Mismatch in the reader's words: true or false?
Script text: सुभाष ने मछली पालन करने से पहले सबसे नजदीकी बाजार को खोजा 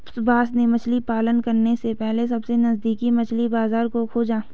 true